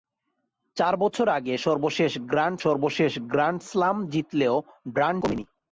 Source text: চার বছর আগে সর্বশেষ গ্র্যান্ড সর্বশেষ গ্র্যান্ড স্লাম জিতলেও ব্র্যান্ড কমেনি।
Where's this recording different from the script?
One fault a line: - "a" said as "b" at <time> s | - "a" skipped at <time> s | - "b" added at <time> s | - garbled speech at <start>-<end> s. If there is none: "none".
none